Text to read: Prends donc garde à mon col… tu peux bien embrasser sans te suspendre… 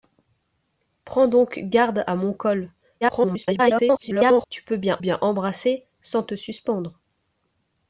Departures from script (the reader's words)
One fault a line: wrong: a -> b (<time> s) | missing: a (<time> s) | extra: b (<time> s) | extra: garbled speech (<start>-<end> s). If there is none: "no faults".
extra: garbled speech (3.0-4.5 s)
extra: bien (5.0 s)